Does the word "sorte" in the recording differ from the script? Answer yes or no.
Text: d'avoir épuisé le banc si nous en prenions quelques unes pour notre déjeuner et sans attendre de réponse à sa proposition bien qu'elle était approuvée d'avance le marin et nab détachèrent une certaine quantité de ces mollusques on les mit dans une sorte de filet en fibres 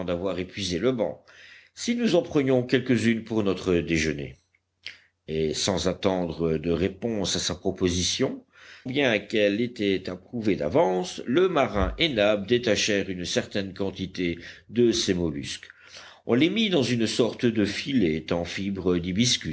no